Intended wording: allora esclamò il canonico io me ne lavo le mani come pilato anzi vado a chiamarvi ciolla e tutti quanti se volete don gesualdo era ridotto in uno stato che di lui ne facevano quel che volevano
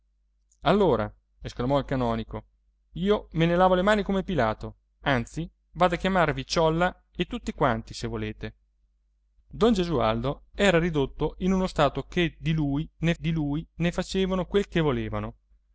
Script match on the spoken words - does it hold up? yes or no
no